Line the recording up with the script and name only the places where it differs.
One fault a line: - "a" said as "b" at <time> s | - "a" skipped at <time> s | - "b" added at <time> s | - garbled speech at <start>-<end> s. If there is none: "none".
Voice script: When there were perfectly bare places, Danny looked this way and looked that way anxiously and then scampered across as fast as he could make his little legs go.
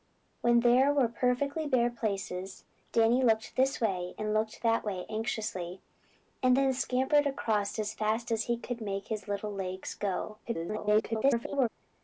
- garbled speech at 10.4-11.7 s